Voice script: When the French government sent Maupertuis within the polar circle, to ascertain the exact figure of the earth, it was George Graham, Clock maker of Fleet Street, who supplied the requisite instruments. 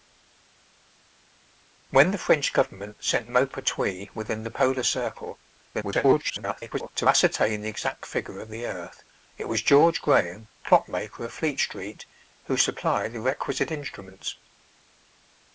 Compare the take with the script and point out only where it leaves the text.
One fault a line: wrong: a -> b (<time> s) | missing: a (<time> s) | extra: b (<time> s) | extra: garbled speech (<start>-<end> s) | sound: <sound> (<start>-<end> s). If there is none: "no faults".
extra: garbled speech (5.7-6.9 s)